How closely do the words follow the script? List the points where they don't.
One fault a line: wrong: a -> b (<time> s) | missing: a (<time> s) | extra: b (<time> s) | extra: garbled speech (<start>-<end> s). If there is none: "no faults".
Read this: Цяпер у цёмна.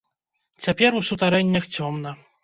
extra: сутарэннях (1.1 s)